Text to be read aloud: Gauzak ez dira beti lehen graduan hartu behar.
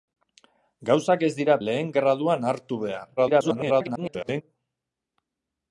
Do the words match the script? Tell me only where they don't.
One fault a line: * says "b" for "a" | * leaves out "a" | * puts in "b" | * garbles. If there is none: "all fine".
* leaves out "beti"
* garbles